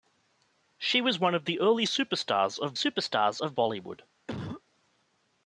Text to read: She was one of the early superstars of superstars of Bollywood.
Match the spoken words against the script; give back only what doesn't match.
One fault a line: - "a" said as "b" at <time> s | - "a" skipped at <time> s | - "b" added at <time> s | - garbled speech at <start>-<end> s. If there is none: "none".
none